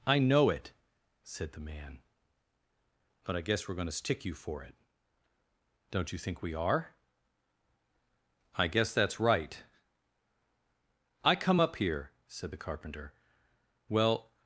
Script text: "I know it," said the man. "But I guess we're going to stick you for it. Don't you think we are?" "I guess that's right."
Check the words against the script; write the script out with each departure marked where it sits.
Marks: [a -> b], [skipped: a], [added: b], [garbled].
"I know it," said the man. "But I guess we're going to stick you for it. Don't you think we are?" "I guess that's right." [added: I come up here said the carpenter well]